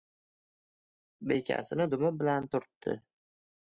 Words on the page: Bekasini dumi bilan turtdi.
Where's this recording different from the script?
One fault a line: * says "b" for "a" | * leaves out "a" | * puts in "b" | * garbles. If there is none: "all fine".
all fine